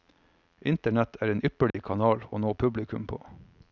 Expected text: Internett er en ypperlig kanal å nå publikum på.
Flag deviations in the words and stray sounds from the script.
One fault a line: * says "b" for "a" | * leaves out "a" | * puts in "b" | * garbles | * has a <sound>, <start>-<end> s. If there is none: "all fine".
* has a dropout, 1.7-1.7 s